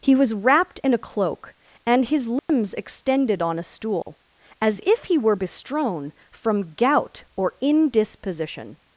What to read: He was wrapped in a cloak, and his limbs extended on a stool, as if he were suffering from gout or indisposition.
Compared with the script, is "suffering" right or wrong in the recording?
wrong